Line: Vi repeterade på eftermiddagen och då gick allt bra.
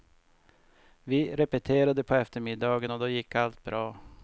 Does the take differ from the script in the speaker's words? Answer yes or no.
no